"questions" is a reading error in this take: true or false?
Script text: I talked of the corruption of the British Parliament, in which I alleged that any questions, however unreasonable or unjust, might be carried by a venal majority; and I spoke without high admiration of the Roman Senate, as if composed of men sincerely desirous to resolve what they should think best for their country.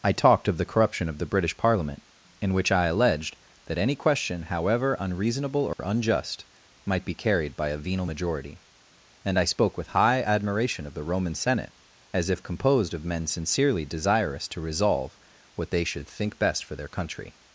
true